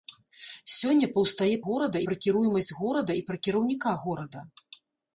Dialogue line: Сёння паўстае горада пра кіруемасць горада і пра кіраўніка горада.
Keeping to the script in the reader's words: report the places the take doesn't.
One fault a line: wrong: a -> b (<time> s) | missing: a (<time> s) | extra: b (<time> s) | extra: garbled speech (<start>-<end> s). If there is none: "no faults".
no faults